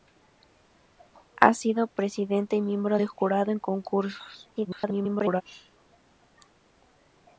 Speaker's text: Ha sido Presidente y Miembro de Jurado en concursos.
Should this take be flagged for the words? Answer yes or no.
yes